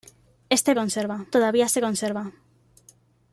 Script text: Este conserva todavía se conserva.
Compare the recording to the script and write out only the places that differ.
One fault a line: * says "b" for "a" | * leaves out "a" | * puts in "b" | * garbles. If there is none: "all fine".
all fine